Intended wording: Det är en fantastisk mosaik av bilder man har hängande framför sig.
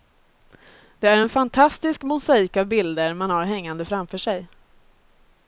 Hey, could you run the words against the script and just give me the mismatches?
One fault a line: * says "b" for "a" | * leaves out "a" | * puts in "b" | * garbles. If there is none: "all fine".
all fine